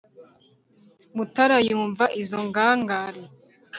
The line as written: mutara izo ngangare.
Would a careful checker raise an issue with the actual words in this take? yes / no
yes